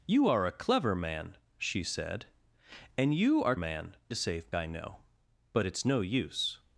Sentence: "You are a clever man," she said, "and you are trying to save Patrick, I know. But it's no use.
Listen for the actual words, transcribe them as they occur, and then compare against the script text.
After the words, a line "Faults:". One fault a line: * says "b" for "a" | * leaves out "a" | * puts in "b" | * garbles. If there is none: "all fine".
"You are a clever man," she said, "and you are man to save I know. But it's no use.
Faults:
* says "man" for "trying"
* leaves out "Patrick"